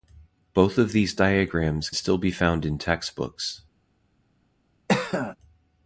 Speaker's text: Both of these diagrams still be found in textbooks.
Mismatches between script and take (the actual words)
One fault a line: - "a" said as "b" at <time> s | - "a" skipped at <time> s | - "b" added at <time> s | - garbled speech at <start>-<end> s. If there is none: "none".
none